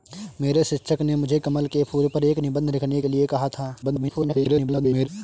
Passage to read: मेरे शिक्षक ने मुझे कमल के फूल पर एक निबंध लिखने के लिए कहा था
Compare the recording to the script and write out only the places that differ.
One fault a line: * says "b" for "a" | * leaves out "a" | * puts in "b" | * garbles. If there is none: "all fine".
* garbles